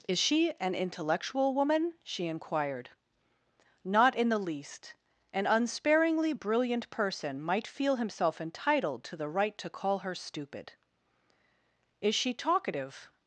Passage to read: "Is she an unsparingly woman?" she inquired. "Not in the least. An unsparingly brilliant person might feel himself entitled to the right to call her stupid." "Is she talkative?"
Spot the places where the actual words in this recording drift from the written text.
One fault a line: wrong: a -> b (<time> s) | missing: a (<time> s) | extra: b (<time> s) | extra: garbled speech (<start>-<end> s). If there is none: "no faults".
wrong: unsparingly -> intellectual (0.7 s)